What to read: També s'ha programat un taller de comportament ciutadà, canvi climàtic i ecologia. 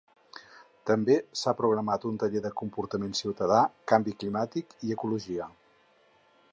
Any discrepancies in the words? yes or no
no